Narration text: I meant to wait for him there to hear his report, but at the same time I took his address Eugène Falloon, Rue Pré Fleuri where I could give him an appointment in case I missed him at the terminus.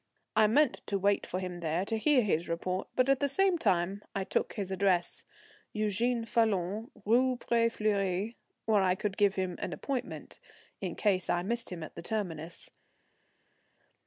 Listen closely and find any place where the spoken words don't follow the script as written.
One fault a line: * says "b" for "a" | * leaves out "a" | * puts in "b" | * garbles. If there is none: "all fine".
all fine